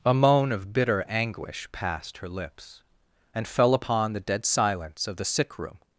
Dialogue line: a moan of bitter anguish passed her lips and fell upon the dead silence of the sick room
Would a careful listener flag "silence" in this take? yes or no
no